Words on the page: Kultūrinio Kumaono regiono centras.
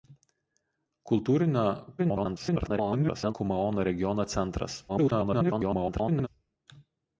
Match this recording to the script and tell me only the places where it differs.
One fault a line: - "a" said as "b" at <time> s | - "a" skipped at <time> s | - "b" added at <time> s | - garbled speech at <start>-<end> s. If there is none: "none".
- garbled speech at 2.0-3.3 s
- garbled speech at 4.9-6.3 s